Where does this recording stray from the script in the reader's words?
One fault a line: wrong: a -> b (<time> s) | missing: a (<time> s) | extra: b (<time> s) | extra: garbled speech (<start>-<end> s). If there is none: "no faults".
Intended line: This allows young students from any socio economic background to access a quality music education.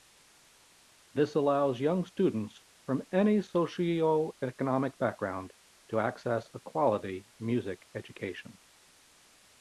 no faults